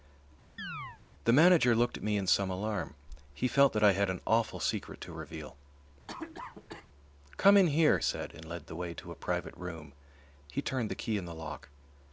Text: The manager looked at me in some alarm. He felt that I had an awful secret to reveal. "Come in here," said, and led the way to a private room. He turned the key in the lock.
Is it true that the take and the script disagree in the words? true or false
false